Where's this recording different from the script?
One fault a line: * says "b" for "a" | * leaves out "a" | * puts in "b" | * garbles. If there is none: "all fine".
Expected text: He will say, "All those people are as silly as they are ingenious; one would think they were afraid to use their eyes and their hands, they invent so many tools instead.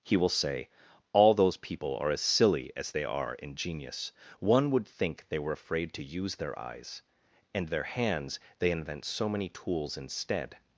all fine